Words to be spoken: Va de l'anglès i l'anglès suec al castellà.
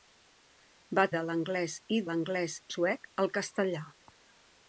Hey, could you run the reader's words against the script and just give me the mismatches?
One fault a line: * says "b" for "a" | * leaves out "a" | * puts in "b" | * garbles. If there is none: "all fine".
all fine